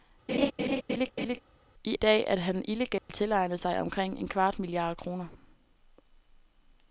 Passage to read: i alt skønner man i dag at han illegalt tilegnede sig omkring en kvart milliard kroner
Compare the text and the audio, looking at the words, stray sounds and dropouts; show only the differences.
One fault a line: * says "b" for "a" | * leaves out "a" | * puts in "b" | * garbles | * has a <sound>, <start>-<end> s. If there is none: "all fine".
* has a laugh, 0.3-1.4 s
* leaves out "alt skønner man"
* has a dropout, 3.0-3.1 s